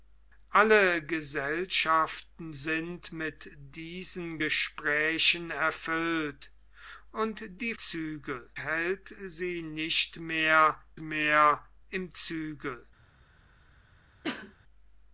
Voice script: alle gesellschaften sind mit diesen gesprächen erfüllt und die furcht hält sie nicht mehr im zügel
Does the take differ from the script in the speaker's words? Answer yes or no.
yes